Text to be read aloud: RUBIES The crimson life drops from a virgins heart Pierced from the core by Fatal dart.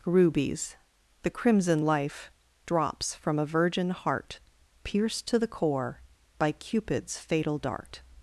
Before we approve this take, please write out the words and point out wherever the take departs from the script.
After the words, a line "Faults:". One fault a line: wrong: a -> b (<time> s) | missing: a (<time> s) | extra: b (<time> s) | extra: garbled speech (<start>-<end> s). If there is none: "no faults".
RUBIES The crimson life drops from a virgin heart Pierced to the core by Cupid's fatal dart.
Faults:
wrong: virgins -> virgin (3.4 s)
wrong: from -> to (5.3 s)
extra: Cupid's (6.5 s)